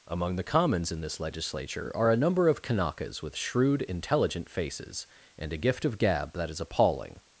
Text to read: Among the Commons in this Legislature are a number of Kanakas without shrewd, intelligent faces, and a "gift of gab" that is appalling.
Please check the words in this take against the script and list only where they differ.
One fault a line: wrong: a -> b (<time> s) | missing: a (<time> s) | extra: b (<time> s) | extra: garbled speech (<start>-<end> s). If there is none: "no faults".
wrong: without -> with (3.2 s)